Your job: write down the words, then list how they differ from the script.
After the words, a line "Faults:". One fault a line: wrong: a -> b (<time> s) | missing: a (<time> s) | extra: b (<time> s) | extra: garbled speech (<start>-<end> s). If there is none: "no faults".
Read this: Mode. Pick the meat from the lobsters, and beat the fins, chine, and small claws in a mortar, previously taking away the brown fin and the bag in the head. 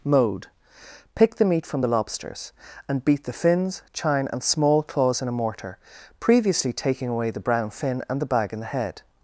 Mode. Pick the meat from the lobsters, and beat the fins, chine, and small claws in a mortar, previously taking away the brown fin and the bag in the head.
Faults:
no faults